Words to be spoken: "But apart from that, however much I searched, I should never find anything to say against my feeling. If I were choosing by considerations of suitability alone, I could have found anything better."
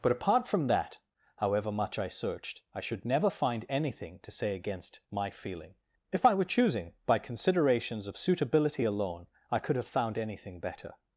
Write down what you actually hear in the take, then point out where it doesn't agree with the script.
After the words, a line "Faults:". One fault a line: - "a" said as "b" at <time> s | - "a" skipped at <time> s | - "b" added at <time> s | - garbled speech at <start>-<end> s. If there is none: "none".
"But apart from that, however much I searched, I should never find anything to say against my feeling. If I were choosing by considerations of suitability alone, I could have found anything better."
Faults:
none